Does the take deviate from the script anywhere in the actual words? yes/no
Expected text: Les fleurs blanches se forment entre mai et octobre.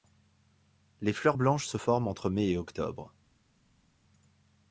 no